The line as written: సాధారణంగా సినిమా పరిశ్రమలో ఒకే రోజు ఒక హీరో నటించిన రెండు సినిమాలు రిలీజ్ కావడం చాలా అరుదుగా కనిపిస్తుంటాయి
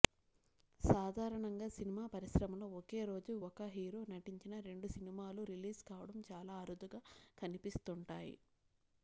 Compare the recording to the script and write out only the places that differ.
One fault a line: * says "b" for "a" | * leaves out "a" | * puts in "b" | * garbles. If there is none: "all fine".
all fine